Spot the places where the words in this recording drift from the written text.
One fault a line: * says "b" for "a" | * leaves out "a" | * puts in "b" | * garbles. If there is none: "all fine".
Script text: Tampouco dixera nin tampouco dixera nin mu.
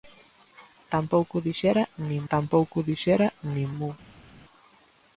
all fine